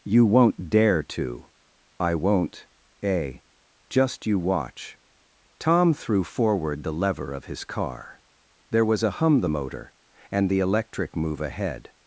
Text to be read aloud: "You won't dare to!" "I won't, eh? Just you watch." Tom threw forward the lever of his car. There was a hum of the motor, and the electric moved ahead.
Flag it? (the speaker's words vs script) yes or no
yes